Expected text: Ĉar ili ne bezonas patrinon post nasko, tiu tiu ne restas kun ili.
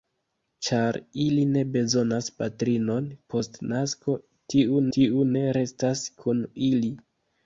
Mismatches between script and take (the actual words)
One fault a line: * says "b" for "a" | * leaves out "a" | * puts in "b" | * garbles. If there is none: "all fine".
all fine